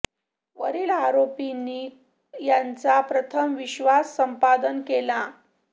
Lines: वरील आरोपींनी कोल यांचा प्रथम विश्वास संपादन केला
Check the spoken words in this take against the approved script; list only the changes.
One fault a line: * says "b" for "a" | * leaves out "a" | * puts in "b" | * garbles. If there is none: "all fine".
* leaves out "कोल"